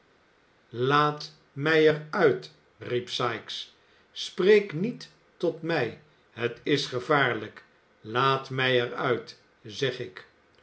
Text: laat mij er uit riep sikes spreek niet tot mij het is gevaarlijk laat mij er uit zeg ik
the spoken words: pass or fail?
pass